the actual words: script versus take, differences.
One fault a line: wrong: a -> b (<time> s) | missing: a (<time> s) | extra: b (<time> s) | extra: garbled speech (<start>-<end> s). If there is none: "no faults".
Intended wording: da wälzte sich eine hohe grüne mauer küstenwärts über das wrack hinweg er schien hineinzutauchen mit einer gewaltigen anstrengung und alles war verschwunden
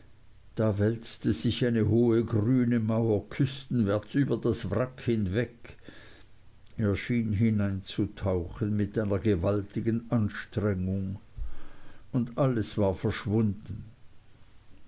no faults